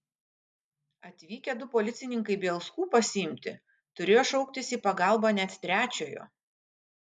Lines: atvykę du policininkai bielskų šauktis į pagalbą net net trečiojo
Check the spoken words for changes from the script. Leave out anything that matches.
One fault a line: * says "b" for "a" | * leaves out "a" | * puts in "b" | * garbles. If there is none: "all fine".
* puts in "pasiimti turėjo"
* leaves out "net"